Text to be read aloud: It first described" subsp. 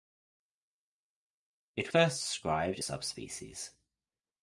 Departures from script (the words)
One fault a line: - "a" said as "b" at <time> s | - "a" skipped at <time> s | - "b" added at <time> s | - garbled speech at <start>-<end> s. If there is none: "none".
none